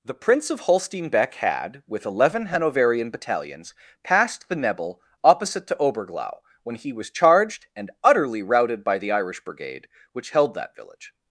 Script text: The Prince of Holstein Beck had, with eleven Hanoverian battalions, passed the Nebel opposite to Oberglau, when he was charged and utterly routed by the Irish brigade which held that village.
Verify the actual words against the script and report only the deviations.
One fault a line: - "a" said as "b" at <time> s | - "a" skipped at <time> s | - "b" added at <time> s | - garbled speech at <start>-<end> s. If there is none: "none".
none